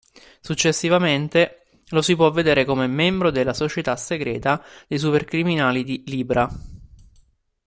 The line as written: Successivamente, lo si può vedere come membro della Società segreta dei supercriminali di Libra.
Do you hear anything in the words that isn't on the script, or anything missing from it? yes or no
no